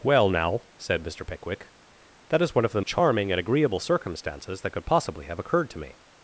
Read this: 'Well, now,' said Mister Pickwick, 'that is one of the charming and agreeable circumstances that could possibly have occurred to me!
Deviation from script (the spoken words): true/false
false